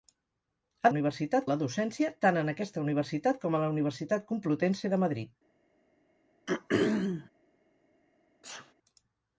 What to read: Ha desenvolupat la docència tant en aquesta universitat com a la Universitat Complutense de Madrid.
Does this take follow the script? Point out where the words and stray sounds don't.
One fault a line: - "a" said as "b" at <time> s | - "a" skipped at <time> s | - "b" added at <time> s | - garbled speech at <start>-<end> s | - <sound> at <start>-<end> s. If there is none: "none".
- "desenvolupat" said as "universitat" at 0.9 s
- throat clearing at 6.5-7.3 s
- sneeze at 8.4-8.7 s